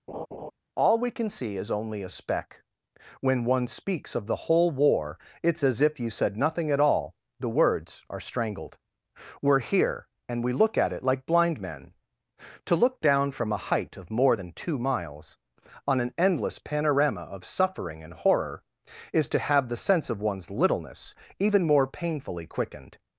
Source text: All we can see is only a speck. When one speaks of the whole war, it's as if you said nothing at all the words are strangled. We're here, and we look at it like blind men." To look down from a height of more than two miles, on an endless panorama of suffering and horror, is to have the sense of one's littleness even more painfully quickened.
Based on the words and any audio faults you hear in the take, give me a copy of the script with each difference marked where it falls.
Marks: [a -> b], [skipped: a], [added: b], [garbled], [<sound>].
[laugh] All we can see is only a speck. When one speaks of the whole war, it's as if you said nothing at all the words are strangled. We're here, and we look at it like blind men." To look down from a height of more than two miles, on an endless panorama of suffering and horror, is to have the sense of one's littleness even more painfully quickened.